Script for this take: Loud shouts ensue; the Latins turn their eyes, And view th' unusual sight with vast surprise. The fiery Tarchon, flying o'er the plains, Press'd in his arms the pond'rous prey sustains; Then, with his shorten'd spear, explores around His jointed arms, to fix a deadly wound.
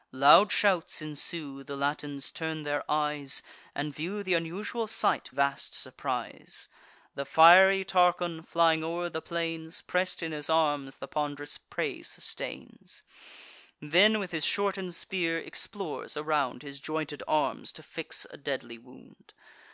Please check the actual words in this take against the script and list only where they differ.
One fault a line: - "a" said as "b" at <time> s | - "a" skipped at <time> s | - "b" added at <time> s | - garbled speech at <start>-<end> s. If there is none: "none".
- "with" skipped at 5.3 s